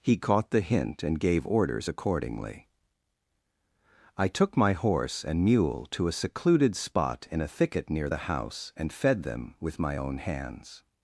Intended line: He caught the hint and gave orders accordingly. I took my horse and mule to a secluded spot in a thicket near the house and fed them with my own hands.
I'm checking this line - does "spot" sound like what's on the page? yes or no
yes